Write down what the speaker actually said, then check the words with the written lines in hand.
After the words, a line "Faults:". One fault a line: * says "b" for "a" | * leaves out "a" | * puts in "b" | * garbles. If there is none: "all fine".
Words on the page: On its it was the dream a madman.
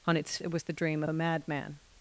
On its it was the dream a madman.
Faults:
all fine